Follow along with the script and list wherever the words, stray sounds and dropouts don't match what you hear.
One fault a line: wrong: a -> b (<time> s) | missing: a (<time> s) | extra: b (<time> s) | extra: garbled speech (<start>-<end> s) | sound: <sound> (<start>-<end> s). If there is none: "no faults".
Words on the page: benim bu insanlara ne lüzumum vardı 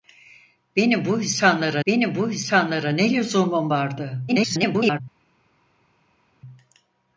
extra: benim bu insanlara (1.9 s)
extra: garbled speech (4.3-5.0 s)